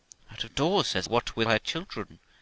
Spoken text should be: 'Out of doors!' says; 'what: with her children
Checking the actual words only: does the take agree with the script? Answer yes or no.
yes